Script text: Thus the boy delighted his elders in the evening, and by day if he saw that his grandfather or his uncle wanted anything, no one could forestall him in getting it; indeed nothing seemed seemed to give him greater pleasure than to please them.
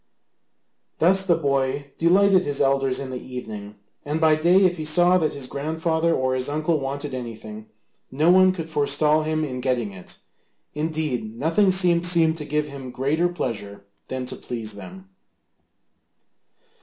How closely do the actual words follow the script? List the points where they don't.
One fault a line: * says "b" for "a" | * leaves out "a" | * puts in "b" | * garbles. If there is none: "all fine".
all fine